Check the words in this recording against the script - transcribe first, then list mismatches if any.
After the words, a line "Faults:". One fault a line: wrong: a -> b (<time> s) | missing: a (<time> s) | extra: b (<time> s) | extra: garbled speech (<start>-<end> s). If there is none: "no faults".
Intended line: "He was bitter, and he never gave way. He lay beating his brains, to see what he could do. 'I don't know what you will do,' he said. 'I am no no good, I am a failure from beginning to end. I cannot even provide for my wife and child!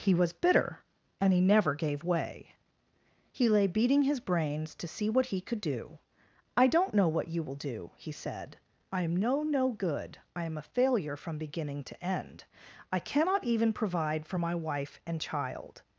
"He was bitter, and he never gave way. He lay beating his brains, to see what he could do. 'I don't know what you will do,' he said. 'I am no no good, I am a failure from beginning to end. I cannot even provide for my wife and child!
Faults:
no faults